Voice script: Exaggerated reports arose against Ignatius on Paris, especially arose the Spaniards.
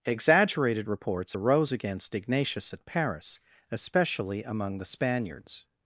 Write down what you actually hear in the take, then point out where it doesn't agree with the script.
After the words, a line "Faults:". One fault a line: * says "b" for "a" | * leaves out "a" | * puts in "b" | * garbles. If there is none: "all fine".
Exaggerated reports arose against Ignatius at Paris, especially among the Spaniards.
Faults:
* says "at" for "on"
* says "among" for "arose"